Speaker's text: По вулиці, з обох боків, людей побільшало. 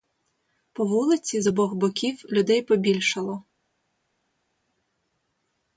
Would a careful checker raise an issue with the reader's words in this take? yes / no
no